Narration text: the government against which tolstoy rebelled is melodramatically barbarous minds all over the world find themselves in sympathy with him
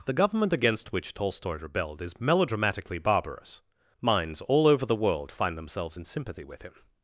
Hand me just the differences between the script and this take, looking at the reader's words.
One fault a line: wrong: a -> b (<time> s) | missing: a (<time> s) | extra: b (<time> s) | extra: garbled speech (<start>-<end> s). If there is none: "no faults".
no faults